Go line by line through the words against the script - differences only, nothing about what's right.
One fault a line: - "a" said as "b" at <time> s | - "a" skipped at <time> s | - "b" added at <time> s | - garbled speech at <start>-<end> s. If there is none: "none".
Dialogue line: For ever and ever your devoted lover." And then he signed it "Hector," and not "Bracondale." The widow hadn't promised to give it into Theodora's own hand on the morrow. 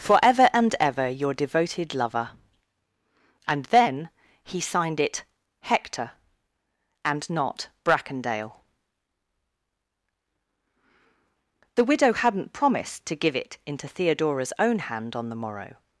none